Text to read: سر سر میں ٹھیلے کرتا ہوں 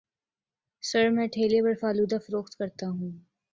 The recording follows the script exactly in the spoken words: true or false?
false